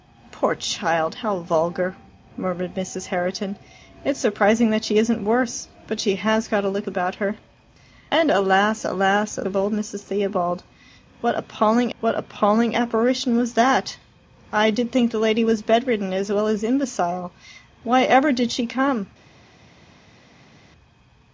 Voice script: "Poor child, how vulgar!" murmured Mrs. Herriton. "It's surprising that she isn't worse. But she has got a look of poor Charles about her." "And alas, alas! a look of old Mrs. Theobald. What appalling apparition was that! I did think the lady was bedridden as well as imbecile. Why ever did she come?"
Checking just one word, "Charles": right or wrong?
wrong